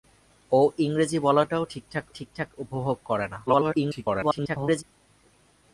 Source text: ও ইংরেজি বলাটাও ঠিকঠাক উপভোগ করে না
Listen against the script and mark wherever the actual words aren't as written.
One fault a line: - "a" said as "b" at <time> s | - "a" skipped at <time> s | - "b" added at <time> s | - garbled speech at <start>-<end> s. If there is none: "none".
- "ঠিকঠাক" added at 2.1 s
- garbled speech at 3.5-4.8 s